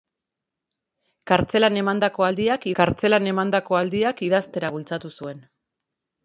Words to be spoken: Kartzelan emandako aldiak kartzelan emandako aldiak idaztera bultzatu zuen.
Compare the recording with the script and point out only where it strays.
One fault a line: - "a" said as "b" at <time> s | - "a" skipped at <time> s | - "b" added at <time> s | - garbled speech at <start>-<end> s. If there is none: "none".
none